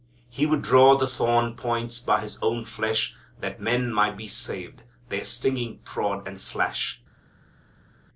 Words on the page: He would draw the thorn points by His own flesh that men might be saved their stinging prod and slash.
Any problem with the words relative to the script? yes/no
no